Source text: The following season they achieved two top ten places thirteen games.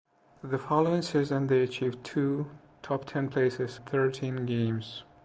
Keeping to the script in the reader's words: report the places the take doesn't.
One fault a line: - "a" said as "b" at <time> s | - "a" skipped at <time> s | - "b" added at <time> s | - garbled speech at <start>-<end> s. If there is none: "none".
none